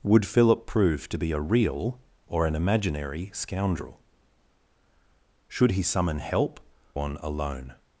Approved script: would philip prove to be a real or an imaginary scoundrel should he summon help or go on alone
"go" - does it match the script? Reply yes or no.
no